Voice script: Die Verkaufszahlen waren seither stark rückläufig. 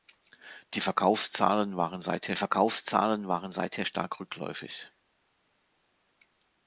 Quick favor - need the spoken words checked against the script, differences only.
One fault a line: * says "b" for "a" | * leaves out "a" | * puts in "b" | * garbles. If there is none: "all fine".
* puts in "Verkaufszahlen waren seither"